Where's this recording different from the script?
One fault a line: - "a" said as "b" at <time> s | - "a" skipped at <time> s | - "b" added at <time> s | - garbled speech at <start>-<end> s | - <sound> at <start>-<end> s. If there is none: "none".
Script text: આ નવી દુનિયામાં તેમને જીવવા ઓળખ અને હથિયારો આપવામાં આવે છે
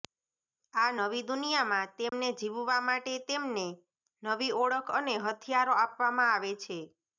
- dropout at 2.1-2.1 s
- "માટે તેમને નવી" added at 2.8 s